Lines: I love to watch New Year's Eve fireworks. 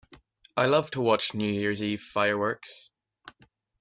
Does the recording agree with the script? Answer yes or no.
yes